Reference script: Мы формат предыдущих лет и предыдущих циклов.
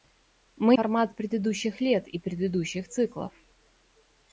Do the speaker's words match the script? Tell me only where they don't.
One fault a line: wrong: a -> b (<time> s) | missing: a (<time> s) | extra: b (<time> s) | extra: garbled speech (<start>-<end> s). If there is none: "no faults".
no faults